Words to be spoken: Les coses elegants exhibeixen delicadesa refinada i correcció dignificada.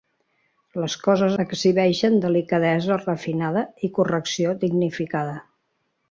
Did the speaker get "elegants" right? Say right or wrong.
wrong